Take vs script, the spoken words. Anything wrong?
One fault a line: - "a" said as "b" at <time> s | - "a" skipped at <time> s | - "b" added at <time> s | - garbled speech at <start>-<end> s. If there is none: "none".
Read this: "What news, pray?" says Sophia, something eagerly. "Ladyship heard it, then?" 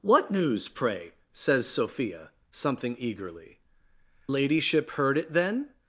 none